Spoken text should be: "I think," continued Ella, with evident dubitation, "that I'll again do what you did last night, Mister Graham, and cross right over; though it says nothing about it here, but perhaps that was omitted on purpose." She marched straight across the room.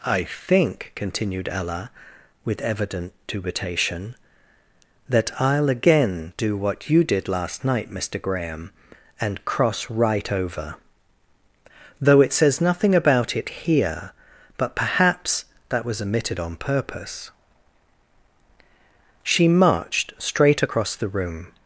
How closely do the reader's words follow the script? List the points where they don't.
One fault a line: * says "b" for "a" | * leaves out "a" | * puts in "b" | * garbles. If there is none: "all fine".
all fine